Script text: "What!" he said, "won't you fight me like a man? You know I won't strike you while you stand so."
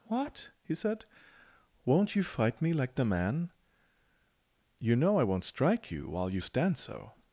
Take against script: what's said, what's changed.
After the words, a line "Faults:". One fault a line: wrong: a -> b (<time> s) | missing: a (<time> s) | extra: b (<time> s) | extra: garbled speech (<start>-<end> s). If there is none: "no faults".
"What!" he said, "won't you fight me like the man? You know I won't strike you while you stand so."
Faults:
wrong: a -> the (3.0 s)